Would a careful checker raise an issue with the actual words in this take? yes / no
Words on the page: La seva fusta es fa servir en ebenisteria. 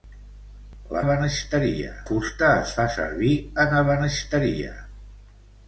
yes